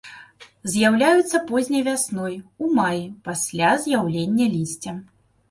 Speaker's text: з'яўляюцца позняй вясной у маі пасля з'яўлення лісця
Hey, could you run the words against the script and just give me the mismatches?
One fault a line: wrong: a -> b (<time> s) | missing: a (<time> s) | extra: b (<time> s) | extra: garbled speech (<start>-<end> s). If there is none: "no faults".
no faults